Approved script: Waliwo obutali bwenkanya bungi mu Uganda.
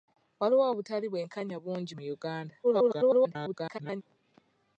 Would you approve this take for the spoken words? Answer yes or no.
no